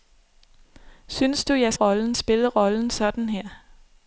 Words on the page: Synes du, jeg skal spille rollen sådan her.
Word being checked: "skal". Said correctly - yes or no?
no